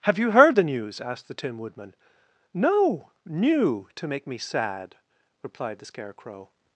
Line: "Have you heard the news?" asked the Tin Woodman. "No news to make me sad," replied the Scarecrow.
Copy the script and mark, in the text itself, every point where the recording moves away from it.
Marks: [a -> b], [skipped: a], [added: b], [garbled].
"Have you heard the news?" asked the Tin Woodman. "No [news -> new] to make me sad," replied the Scarecrow.